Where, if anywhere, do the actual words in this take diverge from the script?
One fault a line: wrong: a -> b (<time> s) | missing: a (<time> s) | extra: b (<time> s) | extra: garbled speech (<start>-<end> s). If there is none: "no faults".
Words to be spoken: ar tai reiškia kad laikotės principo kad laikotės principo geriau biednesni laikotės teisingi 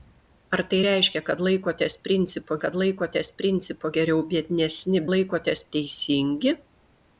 no faults